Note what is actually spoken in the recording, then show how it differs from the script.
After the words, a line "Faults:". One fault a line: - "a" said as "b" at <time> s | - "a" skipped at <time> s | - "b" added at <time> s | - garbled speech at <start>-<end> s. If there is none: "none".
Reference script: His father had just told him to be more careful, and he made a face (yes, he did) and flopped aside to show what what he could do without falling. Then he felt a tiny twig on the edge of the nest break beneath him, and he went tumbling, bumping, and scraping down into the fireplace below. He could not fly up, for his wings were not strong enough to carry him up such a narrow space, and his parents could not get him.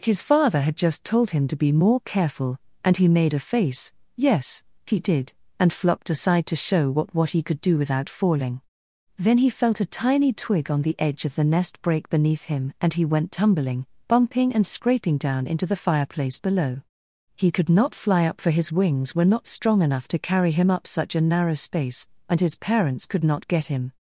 His father had just told him to be more careful, and he made a face (yes, he did) and flopped aside to show what what he could do without falling. Then he felt a tiny twig on the edge of the nest break beneath him, and he went tumbling, bumping, and scraping down into the fireplace below. He could not fly up, for his wings were not strong enough to carry him up such a narrow space, and his parents could not get him.
Faults:
none